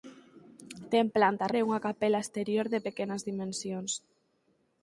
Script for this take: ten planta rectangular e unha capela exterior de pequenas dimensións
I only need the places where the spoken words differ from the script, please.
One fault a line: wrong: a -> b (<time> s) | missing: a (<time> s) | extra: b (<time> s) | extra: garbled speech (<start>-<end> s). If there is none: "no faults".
missing: rectangular (1.5 s)